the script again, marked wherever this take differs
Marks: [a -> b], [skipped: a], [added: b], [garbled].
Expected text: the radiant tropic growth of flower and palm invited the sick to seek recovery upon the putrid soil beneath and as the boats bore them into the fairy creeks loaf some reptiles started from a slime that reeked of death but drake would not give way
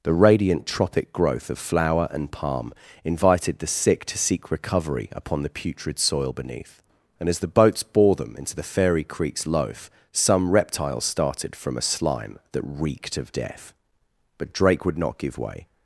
the radiant tropic growth of flower and palm invited the sick to seek recovery upon the putrid soil beneath and as the boats bore them into the fairy creeks loaf some reptiles started from a slime that reeked of death but drake would not give way